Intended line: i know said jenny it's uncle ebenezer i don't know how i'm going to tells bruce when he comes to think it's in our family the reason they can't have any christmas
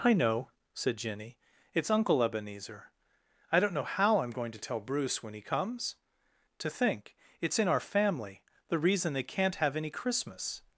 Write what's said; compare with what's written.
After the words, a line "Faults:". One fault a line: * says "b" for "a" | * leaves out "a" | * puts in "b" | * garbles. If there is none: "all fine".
i know said jenny it's uncle ebenezer i don't know how i'm going to tell bruce when he comes to think it's in our family the reason they can't have any christmas
Faults:
* says "tell" for "tells"